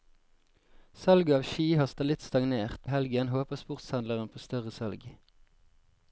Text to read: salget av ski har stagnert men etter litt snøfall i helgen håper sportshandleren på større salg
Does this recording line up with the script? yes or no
no